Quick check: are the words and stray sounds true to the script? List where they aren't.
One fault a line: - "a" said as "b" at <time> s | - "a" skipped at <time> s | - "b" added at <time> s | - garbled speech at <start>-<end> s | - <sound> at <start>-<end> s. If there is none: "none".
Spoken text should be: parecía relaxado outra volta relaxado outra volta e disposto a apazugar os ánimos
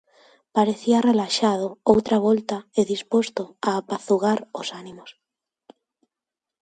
- "relaxado outra volta" skipped at 2.6 s